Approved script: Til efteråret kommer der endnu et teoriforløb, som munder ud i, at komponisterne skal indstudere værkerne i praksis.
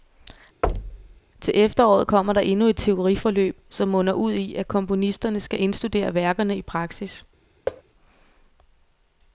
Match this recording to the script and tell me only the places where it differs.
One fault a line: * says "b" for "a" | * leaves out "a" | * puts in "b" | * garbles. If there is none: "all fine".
all fine